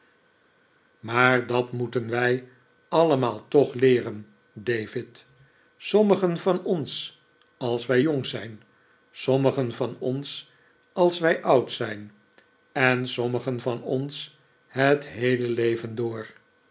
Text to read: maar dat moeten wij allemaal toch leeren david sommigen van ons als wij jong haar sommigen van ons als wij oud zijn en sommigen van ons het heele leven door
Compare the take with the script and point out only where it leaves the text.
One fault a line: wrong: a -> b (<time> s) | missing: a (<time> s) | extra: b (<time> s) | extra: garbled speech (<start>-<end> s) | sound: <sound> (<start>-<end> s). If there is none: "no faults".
wrong: haar -> zijn (8.3 s)